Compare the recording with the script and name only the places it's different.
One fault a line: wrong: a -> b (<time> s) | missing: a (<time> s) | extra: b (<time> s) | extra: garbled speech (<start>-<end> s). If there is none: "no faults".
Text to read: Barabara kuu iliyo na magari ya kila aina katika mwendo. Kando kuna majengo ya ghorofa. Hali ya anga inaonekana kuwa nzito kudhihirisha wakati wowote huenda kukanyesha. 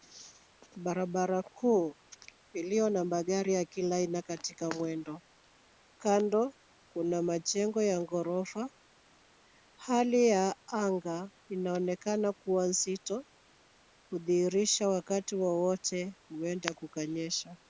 no faults